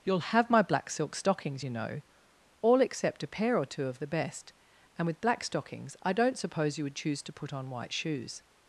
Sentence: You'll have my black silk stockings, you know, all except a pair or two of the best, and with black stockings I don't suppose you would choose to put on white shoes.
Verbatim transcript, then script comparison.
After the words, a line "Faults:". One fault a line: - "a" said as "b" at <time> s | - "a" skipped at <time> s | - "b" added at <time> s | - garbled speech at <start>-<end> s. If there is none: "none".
You'll have my black silk stockings, you know, all except a pair or two of the best, and with black stockings I don't suppose you would choose to put on white shoes.
Faults:
none